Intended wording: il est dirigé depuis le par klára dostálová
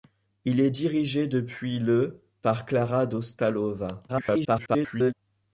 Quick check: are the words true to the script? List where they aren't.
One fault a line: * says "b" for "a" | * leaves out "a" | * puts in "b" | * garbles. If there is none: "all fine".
* garbles